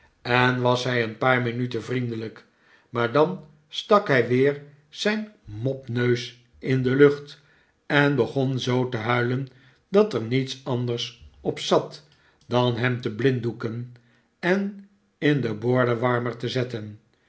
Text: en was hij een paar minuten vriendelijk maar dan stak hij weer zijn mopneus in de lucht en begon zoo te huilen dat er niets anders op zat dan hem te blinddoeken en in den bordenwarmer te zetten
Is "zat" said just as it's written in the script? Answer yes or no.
yes